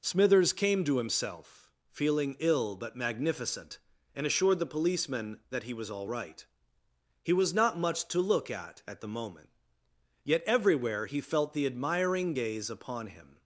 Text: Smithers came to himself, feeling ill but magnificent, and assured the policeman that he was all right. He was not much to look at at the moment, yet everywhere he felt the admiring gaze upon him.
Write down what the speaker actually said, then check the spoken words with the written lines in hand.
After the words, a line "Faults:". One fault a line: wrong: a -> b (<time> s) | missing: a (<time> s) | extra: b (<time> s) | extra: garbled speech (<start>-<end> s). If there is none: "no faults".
Smithers came to himself, feeling ill but magnificent, and assured the policeman that he was all right. He was not much to look at at the moment, yet everywhere he felt the admiring gaze upon him.
Faults:
no faults